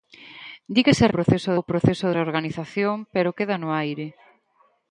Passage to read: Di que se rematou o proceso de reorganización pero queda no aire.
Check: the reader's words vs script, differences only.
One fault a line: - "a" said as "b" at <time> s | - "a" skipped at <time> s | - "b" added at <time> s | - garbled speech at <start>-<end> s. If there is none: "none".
- "rematou" said as "proceso" at 1.1 s
- "de" skipped at 2.1 s